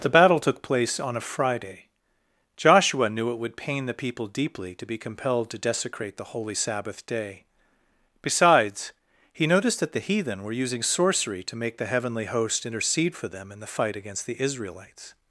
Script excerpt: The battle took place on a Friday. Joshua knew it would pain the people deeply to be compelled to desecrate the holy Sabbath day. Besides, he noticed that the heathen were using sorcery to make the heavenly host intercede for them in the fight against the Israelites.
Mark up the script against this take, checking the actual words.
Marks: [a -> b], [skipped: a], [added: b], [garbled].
The battle took place on a Friday. Joshua knew it would pain the people deeply to be compelled to desecrate the holy Sabbath day. Besides, he noticed that the heathen were using sorcery to make the heavenly host intercede for them in the fight against the Israelites.